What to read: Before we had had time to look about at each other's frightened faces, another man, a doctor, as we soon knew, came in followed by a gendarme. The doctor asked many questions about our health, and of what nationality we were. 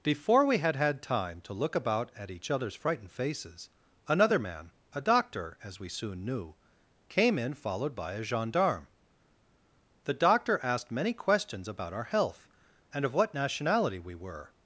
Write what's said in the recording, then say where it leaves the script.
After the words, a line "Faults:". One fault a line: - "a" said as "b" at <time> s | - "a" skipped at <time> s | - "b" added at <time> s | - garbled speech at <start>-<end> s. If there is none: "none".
Before we had had time to look about at each other's frightened faces, another man, a doctor, as we soon knew, came in followed by a gendarme. The doctor asked many questions about our health, and of what nationality we were.
Faults:
none